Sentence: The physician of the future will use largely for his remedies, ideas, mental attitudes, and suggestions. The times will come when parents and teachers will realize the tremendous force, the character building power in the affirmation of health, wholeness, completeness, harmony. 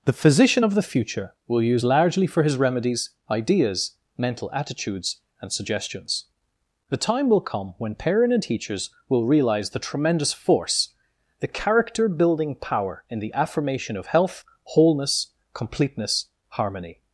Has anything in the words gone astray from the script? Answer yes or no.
yes